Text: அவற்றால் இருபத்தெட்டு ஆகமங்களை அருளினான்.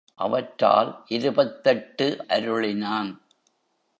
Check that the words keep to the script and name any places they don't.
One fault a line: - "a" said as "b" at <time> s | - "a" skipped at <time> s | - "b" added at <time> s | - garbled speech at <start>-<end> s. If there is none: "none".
- "ஆகமங்களை" skipped at 2.2 s